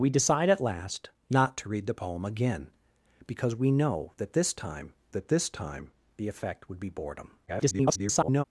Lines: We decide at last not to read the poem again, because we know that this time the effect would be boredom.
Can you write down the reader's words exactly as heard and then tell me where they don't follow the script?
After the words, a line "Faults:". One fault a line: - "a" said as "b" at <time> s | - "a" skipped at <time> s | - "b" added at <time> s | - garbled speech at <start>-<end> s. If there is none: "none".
We decide at last not to read the poem again, because we know that this time that this time the effect would be boredom. [garbled]
Faults:
- "that this time" added at 5.1 s
- garbled speech at 7.5-8.4 s